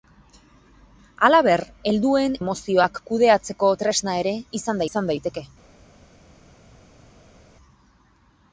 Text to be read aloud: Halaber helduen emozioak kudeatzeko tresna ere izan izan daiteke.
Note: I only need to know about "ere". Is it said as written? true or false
true